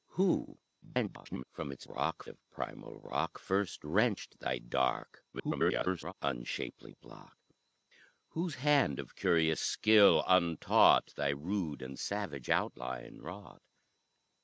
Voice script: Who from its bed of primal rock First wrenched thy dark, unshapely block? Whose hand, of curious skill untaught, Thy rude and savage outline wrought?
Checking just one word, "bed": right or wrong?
wrong